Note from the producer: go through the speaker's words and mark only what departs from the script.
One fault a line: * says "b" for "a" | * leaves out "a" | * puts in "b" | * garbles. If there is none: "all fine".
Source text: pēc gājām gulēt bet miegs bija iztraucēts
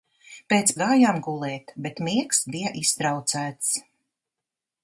all fine